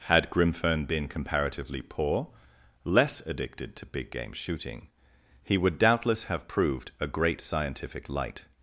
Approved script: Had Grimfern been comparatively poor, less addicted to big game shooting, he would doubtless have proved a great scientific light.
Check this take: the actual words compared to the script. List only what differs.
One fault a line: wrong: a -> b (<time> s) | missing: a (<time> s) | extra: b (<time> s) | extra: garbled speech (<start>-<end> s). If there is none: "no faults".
no faults